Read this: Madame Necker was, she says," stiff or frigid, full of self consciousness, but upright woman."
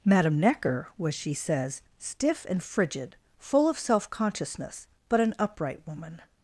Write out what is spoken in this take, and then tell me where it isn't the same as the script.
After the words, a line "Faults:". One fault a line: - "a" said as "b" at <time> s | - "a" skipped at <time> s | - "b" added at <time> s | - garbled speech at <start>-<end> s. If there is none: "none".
Madame Necker was, she says," stiff and frigid, full of self consciousness, but an upright woman."
Faults:
- "or" said as "and" at 2.5 s
- "an" added at 5.2 s